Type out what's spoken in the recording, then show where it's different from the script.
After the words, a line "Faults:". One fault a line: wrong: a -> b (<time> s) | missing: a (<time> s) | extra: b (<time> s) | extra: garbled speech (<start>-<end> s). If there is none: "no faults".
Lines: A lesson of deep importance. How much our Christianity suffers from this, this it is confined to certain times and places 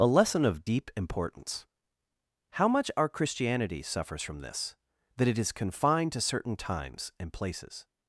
A lesson of deep importance. How much our Christianity suffers from this, that it is confined to certain times and places
Faults:
wrong: this -> that (5.1 s)